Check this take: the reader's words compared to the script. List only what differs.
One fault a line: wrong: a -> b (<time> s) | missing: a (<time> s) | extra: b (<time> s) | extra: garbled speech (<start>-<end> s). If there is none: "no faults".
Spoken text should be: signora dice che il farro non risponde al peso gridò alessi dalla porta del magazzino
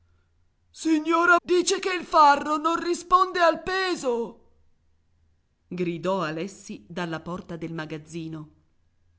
no faults